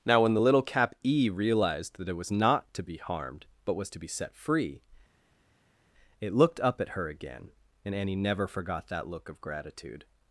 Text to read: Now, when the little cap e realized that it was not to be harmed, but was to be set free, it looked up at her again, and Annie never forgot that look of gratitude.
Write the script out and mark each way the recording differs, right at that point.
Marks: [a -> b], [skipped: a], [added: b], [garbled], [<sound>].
Now, when the little cap e realized that it was not to be harmed, but was to be set free, it looked up at her again, and Annie never forgot that look of gratitude.